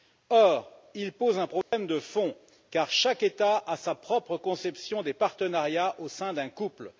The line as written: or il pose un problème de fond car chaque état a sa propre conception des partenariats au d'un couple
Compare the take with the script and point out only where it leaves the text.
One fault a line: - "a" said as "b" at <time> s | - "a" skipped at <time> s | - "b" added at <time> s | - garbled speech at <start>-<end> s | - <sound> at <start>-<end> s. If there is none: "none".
- dropout at 1.6-1.7 s
- "sein" added at 6.1 s